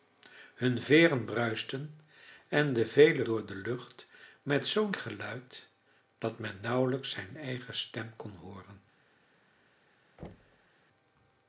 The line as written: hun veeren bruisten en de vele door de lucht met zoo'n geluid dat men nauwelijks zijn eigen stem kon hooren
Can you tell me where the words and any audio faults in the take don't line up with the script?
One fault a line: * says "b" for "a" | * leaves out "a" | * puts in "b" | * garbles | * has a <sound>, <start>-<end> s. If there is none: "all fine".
* has a thud, 10.2-10.7 s